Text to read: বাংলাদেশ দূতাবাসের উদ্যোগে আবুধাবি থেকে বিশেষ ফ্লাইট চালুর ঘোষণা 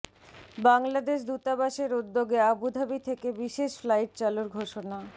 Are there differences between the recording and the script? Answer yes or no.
no